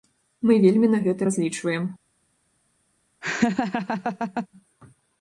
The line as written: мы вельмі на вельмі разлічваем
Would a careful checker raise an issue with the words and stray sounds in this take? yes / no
yes